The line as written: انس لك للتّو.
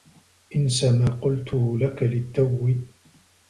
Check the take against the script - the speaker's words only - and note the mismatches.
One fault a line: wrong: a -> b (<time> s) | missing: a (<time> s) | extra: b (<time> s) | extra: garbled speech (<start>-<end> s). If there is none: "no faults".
extra: ما قلته (0.8 s)